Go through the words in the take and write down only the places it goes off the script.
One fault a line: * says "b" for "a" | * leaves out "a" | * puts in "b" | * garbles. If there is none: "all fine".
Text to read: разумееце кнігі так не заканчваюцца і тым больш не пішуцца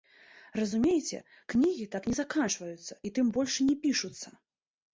all fine